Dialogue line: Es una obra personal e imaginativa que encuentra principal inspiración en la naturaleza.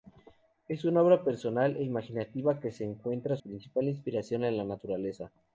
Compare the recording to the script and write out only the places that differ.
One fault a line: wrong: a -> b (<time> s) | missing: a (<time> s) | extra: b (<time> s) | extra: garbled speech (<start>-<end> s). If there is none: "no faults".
no faults